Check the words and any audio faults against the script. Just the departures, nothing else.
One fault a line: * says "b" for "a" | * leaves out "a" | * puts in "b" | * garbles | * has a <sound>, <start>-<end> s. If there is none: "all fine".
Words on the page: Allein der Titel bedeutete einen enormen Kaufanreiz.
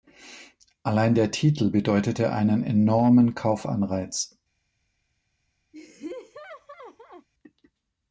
* has a laugh, 5.7-7.3 s